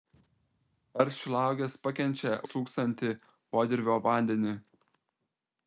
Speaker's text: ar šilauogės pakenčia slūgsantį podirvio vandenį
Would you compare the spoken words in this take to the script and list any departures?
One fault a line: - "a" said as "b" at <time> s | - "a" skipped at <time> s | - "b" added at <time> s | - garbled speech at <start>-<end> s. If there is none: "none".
none